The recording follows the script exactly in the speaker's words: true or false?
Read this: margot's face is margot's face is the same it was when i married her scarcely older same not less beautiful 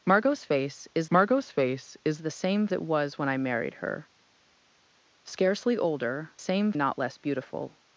true